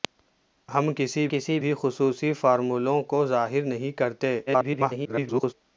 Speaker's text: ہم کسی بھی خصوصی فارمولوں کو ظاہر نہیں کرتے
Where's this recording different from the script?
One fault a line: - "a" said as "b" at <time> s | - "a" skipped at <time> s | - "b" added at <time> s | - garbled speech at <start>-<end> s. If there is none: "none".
- "کسی" added at 1.3 s
- garbled speech at 4.5-5.5 s